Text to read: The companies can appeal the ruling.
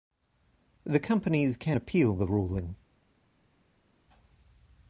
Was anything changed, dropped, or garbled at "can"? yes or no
no